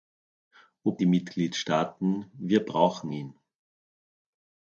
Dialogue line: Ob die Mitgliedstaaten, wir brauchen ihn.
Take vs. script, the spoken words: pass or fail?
pass